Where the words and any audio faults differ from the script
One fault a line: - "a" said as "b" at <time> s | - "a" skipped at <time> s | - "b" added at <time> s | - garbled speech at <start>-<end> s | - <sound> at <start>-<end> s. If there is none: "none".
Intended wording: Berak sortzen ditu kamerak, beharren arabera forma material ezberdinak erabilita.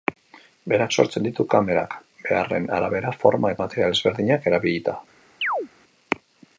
- chirp at 5.4-5.7 s